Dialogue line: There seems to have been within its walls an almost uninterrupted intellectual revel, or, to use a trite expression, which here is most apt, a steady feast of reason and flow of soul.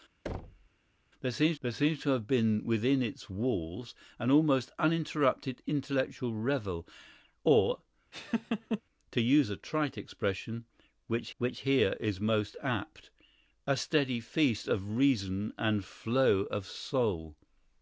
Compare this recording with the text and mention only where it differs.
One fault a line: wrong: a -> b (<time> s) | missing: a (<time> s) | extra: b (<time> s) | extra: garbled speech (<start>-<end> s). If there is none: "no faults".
extra: there seems (1.6 s)
extra: which (11.4 s)